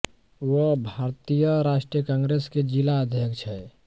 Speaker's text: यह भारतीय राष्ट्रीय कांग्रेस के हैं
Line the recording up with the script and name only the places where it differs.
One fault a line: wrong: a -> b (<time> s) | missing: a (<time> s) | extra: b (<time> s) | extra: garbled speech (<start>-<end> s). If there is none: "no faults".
wrong: यह -> वह (0.4 s)
extra: जिला अध्यक्ष (2.6 s)